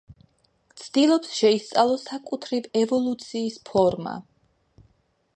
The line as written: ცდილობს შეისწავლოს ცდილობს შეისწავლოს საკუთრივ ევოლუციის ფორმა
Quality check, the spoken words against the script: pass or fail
fail